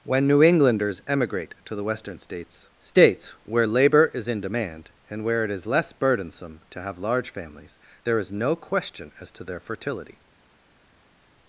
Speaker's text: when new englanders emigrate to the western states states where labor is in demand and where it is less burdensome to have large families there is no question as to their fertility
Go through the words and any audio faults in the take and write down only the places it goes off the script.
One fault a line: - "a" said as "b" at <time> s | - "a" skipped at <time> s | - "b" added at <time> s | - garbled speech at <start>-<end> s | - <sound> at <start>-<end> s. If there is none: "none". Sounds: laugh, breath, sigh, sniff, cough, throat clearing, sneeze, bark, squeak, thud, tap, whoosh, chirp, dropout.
none